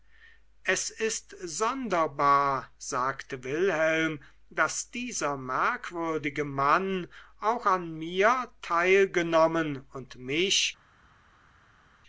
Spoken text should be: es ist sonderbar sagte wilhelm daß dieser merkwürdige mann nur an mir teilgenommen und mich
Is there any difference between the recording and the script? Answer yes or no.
yes